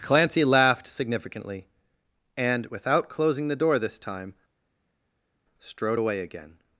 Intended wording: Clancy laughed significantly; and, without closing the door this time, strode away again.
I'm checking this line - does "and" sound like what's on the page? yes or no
yes